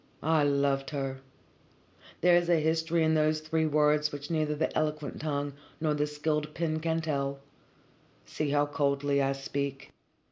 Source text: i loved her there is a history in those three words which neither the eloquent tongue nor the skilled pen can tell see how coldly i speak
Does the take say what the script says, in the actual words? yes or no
yes